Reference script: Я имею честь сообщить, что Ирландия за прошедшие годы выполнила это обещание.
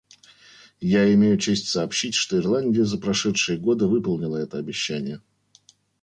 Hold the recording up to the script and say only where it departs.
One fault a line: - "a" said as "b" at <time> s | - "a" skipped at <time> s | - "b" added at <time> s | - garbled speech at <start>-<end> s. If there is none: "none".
none